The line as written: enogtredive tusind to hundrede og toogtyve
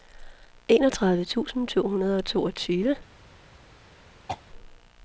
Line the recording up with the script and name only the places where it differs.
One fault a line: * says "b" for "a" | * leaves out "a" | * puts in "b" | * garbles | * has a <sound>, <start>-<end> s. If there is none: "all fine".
* has a throat clearing, 4.3-4.4 s